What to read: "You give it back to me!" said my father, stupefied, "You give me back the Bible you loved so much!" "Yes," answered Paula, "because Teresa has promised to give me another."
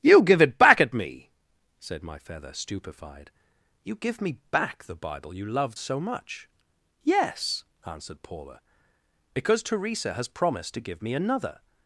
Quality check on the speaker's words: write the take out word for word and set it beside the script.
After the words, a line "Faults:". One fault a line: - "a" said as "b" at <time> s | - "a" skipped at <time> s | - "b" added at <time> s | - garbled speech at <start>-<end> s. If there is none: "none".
"You give it back at me!" said my feather, stupefied, "You give me back the Bible you loved so much!" "Yes," answered Paula, "because Teresa has promised to give me another."
Faults:
- "to" said as "at" at 0.8 s
- "father" said as "feather" at 2.2 s